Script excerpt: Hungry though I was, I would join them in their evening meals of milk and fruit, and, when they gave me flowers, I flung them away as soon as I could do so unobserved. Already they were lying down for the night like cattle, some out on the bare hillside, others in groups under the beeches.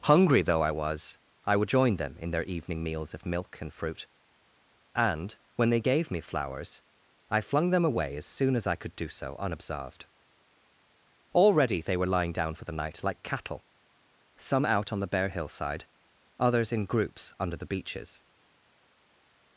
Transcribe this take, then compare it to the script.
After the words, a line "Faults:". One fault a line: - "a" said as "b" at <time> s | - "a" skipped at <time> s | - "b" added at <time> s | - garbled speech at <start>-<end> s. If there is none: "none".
Hungry though I was, I would join them in their evening meals of milk and fruit, and, when they gave me flowers, I flung them away as soon as I could do so unobserved. Already they were lying down for the night like cattle, some out on the bare hillside, others in groups under the beeches.
Faults:
none